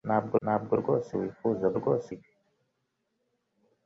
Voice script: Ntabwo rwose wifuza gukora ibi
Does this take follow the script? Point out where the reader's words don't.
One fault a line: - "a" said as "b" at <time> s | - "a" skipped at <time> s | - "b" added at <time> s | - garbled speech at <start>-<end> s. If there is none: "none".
- "ntabwo" added at 0.4 s
- "gukora" said as "rwose" at 1.8 s